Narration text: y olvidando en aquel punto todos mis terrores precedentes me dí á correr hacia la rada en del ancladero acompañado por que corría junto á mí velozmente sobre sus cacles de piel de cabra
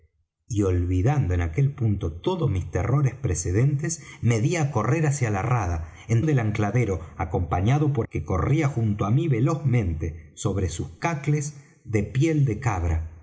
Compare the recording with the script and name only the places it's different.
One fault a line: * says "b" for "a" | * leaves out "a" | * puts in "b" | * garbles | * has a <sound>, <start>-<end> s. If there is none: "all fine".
all fine